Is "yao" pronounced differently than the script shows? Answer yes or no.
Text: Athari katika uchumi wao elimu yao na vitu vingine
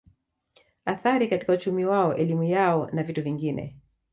no